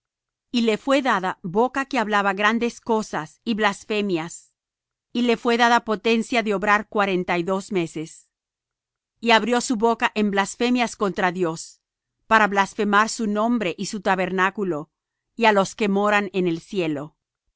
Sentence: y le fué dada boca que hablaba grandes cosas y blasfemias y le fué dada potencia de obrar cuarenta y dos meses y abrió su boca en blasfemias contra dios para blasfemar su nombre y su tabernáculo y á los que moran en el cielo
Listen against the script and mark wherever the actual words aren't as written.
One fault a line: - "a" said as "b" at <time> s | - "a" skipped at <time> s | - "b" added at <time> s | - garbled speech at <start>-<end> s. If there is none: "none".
none